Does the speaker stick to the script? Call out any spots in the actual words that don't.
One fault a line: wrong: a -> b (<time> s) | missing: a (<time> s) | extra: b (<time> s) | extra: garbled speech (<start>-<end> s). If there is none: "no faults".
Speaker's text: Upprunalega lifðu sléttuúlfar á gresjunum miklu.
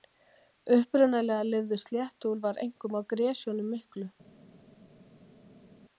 extra: einkum (2.6 s)